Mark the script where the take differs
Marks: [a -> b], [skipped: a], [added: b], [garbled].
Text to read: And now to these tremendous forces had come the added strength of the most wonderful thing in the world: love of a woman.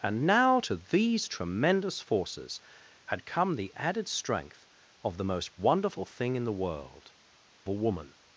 And now to these tremendous forces had come the added strength of the most wonderful thing in the world: [skipped: love of] a woman.